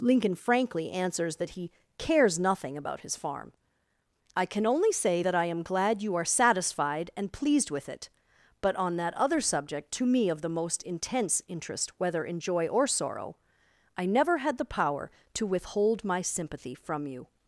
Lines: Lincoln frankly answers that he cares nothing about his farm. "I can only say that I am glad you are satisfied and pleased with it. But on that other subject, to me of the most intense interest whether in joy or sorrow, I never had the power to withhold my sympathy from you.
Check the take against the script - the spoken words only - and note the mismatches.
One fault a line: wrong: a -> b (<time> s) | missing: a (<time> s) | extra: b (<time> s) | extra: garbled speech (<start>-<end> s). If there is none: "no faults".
no faults